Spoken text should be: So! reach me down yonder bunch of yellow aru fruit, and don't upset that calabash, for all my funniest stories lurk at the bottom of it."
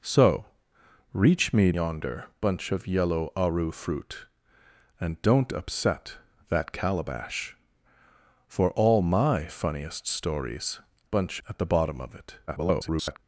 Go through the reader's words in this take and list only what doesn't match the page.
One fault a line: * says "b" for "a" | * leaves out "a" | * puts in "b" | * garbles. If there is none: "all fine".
* leaves out "down"
* says "bunch" for "lurk"
* garbles